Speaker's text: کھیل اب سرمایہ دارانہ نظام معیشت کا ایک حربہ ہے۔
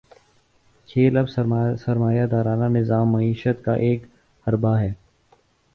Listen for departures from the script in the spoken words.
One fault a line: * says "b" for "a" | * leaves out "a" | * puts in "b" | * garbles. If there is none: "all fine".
all fine